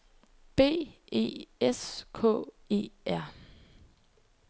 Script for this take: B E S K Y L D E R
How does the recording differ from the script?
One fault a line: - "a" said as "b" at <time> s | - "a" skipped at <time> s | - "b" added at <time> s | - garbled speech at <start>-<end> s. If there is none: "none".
- "Y L D" skipped at 2.4 s